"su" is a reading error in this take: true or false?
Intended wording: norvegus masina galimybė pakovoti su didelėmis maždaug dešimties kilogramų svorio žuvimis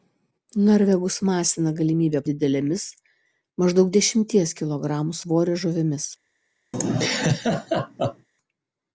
true